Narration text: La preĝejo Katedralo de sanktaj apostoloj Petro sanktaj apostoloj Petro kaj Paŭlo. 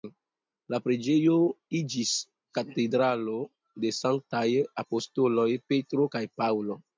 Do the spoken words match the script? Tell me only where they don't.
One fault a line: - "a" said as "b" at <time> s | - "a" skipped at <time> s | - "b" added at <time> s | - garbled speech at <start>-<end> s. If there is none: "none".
- "iĝis" added at 1.8 s
- "sanktaj apostoloj Petro" skipped at 6.1 s